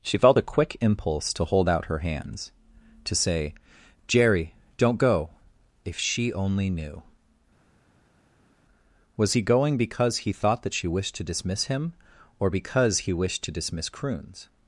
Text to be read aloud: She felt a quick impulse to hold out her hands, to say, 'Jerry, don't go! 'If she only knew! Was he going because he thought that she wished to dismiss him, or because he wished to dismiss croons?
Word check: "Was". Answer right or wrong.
right